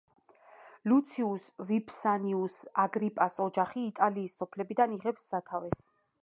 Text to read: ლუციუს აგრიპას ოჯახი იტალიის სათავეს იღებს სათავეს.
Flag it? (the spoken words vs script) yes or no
yes